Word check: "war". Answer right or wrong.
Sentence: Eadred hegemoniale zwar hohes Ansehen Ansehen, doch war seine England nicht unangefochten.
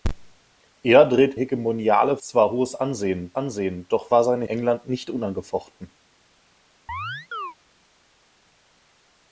right